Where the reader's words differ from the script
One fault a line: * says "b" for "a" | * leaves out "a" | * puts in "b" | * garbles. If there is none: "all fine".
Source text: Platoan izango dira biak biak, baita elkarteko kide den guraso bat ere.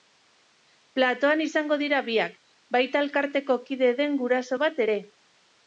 * leaves out "biak"